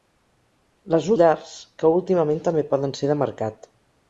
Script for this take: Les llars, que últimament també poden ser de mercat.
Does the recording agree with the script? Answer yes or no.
yes